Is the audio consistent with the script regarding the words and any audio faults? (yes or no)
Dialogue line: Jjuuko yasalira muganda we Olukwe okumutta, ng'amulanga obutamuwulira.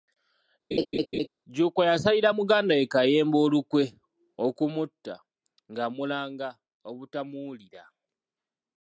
no